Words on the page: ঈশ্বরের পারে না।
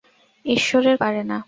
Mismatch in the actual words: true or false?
false